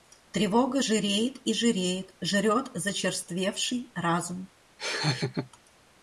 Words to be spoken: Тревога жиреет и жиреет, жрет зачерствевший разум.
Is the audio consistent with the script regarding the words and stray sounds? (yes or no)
no